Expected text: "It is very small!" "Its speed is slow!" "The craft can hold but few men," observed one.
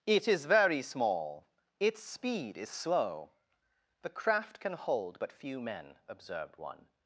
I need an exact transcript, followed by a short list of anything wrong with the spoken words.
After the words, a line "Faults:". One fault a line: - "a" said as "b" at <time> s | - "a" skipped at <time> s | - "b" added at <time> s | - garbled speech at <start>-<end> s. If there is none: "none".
"It is very small!" "Its speed is slow!" "The craft can hold but few men," observed one.
Faults:
none